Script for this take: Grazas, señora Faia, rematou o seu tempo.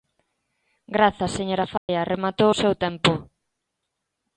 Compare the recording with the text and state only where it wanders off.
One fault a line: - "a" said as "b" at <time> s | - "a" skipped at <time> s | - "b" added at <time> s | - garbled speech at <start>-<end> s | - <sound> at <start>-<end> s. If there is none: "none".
- dropout at 1.8-1.9 s